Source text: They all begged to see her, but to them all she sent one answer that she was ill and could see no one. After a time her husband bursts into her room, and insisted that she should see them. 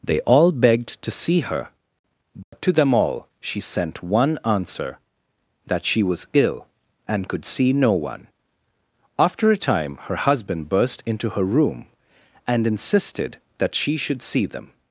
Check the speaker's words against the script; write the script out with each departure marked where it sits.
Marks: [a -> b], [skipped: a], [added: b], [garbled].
They all begged to see her, but to them all she sent one answer that she was ill and could see no one. After a time her husband [bursts -> burst] into her room, and insisted that she should see them.